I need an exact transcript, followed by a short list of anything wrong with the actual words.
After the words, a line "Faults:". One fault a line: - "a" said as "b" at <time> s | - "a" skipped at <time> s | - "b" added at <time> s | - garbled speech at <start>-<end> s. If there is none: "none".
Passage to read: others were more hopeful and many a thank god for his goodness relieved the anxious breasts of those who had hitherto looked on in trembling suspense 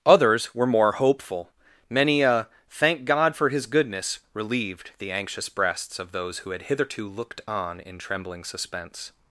others were more hopeful many a thank god for his goodness relieved the anxious breasts of those who had hitherto looked on in trembling suspense
Faults:
- "and" skipped at 1.5 s